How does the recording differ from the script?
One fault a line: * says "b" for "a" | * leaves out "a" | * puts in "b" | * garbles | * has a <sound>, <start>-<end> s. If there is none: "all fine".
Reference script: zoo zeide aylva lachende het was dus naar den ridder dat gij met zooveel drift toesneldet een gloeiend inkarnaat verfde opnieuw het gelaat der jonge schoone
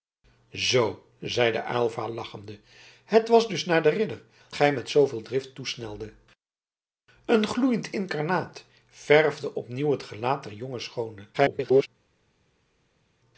* leaves out "dat"
* garbles